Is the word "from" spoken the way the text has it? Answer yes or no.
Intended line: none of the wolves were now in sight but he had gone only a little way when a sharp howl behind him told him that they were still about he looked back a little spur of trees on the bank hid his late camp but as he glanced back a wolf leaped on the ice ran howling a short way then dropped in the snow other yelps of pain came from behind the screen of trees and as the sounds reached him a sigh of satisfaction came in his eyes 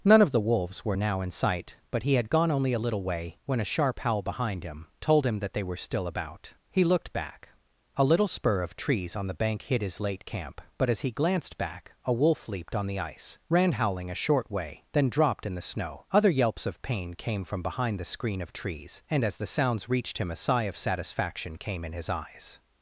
yes